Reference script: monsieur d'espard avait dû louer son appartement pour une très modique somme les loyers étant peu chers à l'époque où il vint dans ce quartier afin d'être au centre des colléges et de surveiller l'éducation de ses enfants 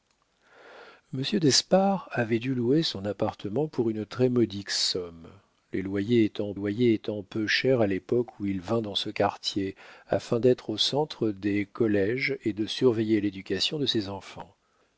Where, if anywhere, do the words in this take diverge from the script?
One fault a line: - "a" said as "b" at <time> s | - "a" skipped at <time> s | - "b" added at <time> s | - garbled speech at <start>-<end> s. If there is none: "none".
- "loyers étant" added at 6.5 s